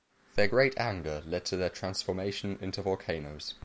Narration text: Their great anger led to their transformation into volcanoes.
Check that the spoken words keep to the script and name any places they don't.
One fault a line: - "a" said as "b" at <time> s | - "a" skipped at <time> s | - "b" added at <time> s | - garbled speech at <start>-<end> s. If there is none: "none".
none